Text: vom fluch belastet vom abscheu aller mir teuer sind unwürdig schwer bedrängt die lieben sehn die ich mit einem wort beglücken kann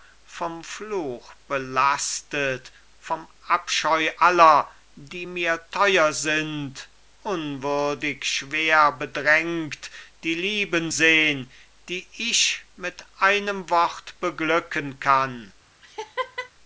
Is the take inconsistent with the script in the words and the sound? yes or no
yes